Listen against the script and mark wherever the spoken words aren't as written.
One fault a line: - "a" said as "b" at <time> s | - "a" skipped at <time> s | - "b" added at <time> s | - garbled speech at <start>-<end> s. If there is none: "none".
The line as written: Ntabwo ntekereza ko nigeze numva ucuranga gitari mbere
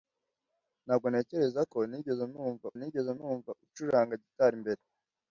- "nigeze numva" added at 2.8 s